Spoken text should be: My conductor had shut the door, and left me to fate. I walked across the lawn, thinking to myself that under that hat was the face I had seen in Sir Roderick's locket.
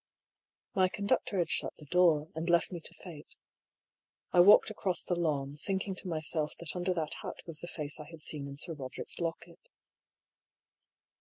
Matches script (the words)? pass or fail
pass